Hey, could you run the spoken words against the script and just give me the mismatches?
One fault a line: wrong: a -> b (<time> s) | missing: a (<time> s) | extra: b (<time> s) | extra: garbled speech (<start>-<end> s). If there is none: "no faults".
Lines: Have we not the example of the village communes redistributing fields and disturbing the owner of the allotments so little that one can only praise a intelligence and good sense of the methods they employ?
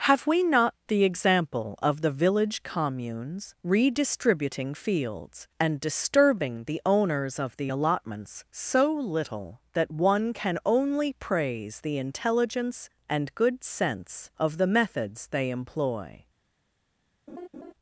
wrong: owner -> owners (6.8 s)
wrong: a -> the (11.8 s)